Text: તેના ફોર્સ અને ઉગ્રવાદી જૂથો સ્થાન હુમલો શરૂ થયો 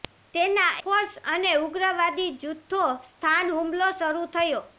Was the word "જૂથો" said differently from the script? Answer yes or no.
no